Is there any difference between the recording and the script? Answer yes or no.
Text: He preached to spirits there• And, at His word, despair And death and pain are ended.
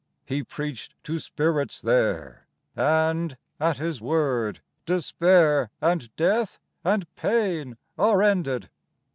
no